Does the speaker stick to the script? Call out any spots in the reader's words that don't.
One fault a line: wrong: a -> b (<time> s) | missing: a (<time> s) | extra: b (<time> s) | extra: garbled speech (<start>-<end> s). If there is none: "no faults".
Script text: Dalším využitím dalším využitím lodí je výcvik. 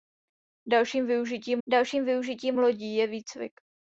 no faults